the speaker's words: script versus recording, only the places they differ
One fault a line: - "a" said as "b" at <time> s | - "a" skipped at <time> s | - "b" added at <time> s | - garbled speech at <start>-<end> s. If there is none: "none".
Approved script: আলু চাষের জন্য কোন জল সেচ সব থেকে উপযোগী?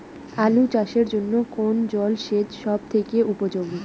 none